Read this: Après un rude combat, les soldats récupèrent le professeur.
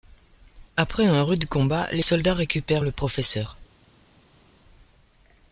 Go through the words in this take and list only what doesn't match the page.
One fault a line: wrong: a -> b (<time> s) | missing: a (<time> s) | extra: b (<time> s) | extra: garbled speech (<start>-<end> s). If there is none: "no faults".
no faults